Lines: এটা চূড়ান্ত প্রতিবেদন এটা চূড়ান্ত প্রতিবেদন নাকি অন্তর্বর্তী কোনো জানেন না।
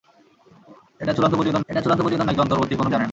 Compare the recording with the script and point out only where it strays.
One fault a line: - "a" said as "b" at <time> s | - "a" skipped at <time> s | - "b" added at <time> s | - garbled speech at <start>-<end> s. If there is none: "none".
none